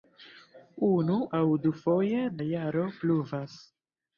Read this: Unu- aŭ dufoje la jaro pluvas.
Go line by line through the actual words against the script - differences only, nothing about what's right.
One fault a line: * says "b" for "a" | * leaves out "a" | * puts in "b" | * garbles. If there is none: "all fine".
all fine